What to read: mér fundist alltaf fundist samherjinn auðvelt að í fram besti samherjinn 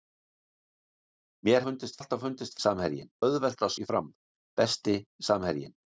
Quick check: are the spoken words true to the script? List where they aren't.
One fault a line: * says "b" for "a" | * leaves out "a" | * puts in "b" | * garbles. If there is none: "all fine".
all fine